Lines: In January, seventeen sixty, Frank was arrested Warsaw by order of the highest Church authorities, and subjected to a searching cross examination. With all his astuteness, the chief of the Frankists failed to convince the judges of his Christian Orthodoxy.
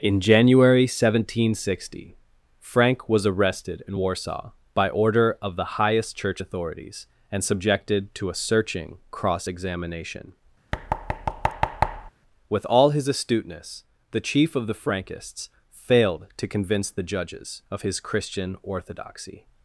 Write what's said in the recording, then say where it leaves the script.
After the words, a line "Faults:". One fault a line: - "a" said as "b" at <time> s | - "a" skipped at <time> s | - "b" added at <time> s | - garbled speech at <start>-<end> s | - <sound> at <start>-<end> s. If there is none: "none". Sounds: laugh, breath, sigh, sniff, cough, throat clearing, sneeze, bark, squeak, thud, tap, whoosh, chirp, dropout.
In January, seventeen sixty, Frank was arrested in Warsaw by order of the highest Church authorities, and subjected to a searching cross examination. With all his astuteness, the chief of the Frankists failed to convince the judges of his Christian Orthodoxy.
Faults:
- "in" added at 3.9 s
- thud at 10.7-12.1 s